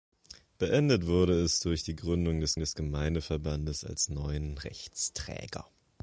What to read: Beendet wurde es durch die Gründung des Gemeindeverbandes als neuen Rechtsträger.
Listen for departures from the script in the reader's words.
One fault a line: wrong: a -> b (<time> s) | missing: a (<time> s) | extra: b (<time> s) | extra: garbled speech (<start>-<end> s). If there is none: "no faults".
extra: des (2.6 s)